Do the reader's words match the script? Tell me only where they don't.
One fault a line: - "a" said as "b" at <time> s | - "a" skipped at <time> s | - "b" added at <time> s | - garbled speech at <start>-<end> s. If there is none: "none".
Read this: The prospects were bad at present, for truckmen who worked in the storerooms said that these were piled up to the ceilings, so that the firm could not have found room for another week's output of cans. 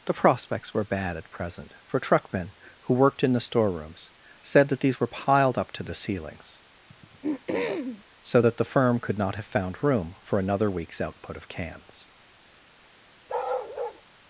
none